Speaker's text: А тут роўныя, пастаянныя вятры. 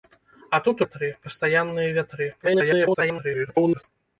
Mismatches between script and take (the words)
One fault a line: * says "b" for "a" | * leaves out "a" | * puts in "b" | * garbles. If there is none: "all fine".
* says "вятры" for "роўныя"
* garbles